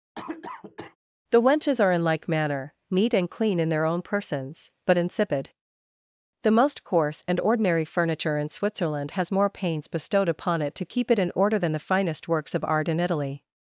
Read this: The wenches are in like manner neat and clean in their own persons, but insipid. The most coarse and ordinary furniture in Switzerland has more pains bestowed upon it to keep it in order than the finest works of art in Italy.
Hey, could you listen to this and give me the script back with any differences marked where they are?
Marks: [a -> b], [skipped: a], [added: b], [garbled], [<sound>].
[cough] The wenches are in like manner neat and clean in their own persons, but insipid. The most coarse and ordinary furniture in Switzerland has more pains bestowed upon it to keep it in order than the finest works of art in Italy.